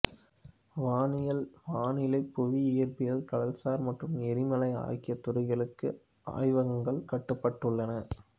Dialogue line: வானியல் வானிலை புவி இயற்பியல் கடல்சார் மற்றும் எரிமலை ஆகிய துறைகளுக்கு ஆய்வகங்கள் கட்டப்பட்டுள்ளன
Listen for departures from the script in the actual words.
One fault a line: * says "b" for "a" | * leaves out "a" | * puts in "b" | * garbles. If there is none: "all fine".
all fine